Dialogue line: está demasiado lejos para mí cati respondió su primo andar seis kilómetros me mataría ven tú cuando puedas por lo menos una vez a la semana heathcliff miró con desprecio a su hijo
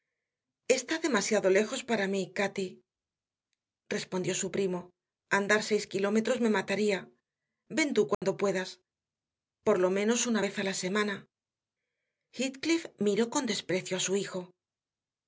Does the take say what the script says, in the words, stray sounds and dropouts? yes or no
no